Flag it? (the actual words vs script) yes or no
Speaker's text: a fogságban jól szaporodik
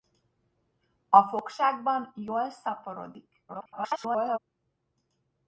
yes